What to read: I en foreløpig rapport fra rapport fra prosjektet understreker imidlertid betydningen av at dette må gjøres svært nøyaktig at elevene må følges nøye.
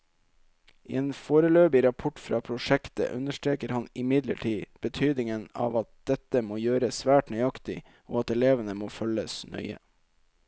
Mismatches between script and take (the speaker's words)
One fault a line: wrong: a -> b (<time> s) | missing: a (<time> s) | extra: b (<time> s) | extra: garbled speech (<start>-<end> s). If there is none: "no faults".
missing: rapport fra (2.4 s)
extra: han (3.8 s)
extra: og (8.1 s)